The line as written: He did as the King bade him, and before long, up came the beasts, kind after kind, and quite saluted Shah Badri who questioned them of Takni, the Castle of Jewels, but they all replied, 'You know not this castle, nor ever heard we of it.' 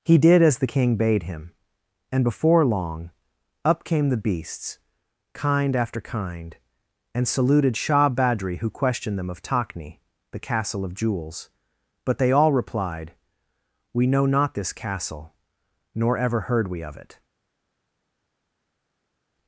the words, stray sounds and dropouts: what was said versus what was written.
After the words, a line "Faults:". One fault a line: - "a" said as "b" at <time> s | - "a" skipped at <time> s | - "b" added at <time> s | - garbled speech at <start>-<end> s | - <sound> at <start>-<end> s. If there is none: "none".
He did as the King bade him, and before long, up came the beasts, kind after kind, and saluted Shah Badri who questioned them of Takni, the Castle of Jewels, but they all replied, 'We know not this castle, nor ever heard we of it.'
Faults:
- "quite" skipped at 7.3 s
- "You" said as "We" at 13.9 s